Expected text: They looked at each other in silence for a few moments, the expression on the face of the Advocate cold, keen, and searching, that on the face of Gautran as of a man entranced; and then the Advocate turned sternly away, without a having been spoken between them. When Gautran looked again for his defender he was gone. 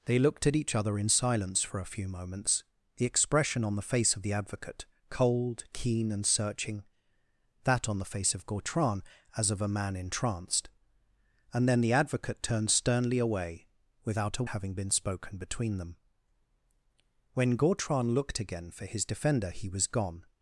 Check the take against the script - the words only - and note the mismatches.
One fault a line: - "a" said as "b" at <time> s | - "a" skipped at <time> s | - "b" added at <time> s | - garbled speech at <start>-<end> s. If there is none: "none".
none